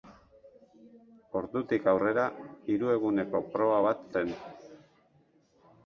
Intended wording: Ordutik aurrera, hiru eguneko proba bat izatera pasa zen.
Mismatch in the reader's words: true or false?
true